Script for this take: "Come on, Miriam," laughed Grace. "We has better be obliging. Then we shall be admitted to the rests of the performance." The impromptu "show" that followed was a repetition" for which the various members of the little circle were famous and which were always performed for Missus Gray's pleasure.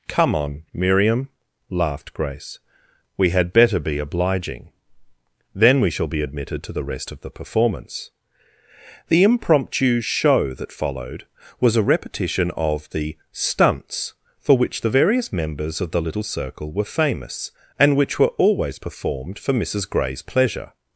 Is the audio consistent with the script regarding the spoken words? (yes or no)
no